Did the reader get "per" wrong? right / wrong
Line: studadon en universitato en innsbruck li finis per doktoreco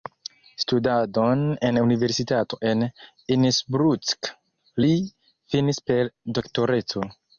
right